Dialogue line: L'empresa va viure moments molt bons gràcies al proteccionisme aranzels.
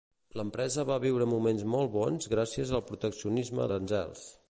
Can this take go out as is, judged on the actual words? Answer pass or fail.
pass